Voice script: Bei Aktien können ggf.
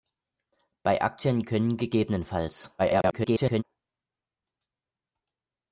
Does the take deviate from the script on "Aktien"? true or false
false